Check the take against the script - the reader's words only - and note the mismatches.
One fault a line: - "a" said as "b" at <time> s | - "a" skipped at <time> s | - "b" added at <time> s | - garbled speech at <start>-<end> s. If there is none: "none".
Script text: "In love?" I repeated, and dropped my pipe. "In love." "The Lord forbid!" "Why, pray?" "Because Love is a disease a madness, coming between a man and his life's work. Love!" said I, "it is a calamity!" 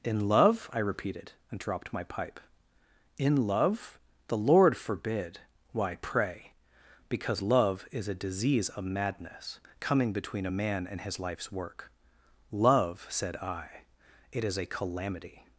- "a" said as "of" at 8.7 s